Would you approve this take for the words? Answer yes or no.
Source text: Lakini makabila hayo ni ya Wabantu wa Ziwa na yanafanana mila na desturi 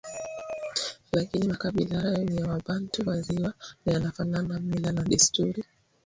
yes